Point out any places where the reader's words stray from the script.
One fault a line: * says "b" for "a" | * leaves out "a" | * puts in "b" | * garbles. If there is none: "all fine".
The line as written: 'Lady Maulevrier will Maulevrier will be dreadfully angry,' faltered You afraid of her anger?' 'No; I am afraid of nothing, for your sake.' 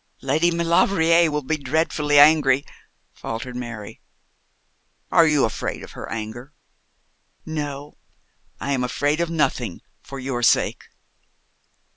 * leaves out "Maulevrier will"
* puts in "Mary Are"